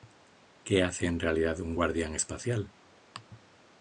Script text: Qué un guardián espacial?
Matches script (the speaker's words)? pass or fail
fail